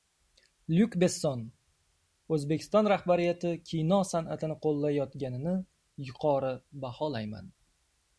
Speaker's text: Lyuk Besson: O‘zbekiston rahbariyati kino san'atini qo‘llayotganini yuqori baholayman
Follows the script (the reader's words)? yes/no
yes